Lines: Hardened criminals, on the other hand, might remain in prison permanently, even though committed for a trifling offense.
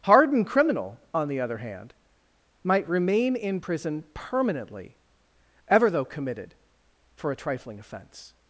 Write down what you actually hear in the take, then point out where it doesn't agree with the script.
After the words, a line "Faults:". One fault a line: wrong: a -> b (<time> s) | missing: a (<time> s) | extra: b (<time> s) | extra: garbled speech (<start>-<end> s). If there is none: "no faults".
Hardened criminal, on the other hand, might remain in prison permanently, ever though committed for a trifling offense.
Faults:
wrong: criminals -> criminal (0.5 s)
wrong: even -> ever (5.7 s)